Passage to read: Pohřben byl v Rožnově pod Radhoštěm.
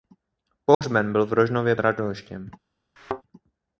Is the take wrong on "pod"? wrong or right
wrong